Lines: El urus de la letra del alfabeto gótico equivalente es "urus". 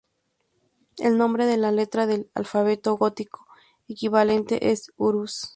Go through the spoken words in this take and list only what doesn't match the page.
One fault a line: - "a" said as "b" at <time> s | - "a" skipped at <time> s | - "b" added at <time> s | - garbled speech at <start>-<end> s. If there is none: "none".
- "urus" said as "nombre" at 1.2 s